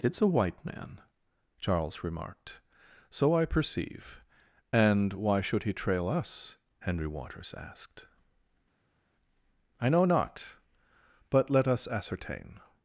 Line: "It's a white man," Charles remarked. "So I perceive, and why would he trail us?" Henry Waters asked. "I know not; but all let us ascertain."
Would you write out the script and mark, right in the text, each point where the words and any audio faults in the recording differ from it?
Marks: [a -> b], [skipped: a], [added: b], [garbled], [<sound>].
"It's a white man," Charles remarked. "So I perceive, and why [would -> should] he trail us?" Henry Waters asked. "I know not; but [skipped: all] let us ascertain."